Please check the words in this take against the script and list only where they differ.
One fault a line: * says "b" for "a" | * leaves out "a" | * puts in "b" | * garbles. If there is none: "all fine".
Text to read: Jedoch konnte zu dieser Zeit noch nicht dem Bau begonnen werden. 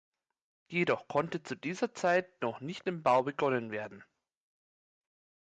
all fine